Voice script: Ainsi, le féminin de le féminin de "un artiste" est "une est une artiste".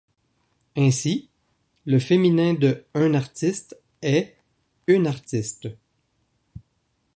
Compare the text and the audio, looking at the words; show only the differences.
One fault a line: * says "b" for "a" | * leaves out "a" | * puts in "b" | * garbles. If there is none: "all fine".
* leaves out "le féminin de"
* leaves out "est une"